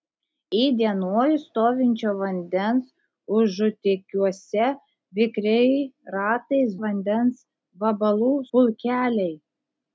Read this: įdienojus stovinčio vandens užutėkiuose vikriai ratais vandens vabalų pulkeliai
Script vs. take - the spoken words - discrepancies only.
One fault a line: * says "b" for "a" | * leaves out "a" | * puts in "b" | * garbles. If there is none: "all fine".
all fine